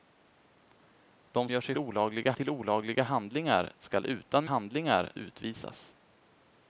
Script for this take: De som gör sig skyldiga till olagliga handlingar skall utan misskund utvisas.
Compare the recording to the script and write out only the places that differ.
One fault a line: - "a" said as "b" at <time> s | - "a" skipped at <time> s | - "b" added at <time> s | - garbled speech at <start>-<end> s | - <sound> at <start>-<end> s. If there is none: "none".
- "som" skipped at 1.5 s
- "skyldiga" said as "olagliga" at 1.8 s
- "misskund" said as "handlingar" at 4.4 s